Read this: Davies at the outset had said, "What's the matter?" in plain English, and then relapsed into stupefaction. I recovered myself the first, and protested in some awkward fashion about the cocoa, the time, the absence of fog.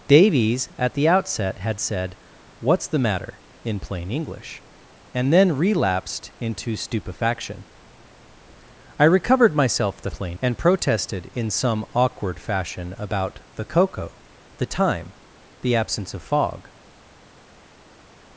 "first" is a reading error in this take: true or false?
true